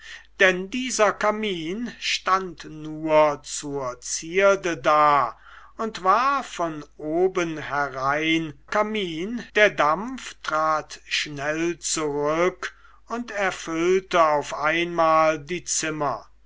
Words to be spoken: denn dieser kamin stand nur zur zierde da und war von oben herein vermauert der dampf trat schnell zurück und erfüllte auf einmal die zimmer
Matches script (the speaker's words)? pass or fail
fail